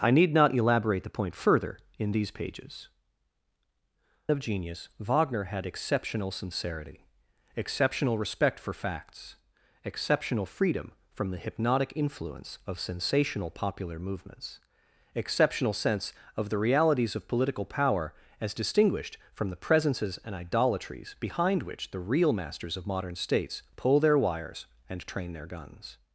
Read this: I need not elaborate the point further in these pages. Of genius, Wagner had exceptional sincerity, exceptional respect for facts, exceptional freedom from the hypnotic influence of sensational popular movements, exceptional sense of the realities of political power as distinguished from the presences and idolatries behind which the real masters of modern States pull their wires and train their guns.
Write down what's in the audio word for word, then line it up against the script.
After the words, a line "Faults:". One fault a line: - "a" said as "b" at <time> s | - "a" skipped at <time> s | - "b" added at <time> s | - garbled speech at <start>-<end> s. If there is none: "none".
I need not elaborate the point further in these pages. Of genius, Wagner had exceptional sincerity, exceptional respect for facts, exceptional freedom from the hypnotic influence of sensational popular movements, exceptional sense of the realities of political power as distinguished from the presences and idolatries behind which the real masters of modern States pull their wires and train their guns.
Faults:
none